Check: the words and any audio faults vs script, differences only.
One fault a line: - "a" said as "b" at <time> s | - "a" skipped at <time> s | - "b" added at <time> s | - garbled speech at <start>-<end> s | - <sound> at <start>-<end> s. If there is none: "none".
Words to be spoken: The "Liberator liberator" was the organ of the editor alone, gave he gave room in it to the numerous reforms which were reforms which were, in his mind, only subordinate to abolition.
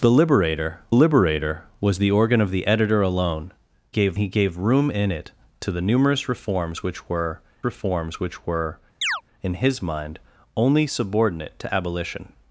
- chirp at 9.0-9.2 s